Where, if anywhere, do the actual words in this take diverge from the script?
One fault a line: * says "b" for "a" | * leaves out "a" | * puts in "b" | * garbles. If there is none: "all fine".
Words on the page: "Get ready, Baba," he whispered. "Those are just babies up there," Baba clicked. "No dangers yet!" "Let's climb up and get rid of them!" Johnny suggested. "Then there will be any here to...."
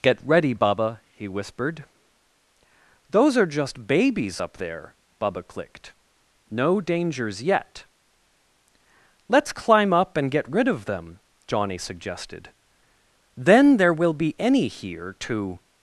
all fine